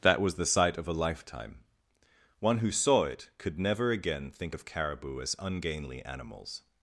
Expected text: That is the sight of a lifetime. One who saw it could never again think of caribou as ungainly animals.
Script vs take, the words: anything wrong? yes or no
yes